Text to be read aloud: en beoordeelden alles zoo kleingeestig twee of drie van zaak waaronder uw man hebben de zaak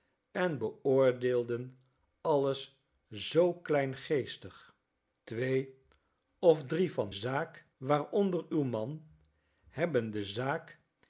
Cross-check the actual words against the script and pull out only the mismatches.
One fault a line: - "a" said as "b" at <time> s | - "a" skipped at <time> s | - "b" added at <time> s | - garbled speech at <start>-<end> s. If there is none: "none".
none